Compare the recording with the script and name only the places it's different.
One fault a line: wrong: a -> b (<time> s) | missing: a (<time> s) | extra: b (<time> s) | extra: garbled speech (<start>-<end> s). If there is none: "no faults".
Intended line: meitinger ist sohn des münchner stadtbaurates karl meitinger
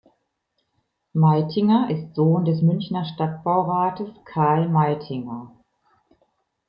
no faults